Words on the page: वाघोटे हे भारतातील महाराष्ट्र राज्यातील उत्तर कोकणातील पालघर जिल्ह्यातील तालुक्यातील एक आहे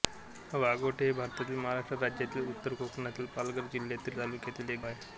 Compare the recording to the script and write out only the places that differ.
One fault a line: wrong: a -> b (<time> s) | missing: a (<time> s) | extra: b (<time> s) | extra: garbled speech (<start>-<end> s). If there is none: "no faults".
no faults